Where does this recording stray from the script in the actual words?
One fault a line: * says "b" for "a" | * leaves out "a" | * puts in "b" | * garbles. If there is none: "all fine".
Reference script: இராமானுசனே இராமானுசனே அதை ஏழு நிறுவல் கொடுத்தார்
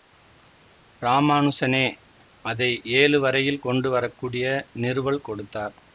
* leaves out "இராமானுசனே"
* puts in "வரையில் கொண்டு வரக்கூடிய"